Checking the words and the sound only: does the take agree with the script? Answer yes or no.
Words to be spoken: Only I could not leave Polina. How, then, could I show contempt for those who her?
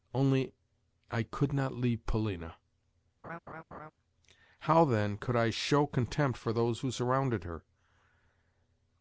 no